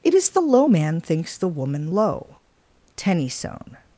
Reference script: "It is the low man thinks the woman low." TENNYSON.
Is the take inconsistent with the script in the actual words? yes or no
no